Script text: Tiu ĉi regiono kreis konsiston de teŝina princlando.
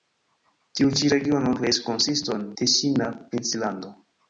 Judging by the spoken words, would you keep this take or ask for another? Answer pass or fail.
fail